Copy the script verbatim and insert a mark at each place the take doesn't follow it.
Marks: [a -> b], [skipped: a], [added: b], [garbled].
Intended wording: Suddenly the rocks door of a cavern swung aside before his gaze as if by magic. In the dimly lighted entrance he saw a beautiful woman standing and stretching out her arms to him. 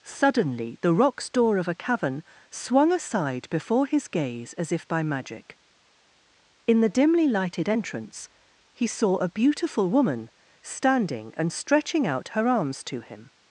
Suddenly the rocks door of a cavern swung aside before his gaze as if by magic. In the dimly lighted entrance he saw a beautiful woman standing and stretching out her arms to him.